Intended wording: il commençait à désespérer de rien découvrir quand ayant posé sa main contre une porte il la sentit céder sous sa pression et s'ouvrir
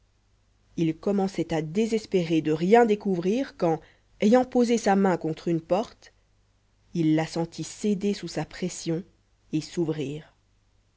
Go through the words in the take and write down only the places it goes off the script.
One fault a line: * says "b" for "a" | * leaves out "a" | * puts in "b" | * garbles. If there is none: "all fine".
all fine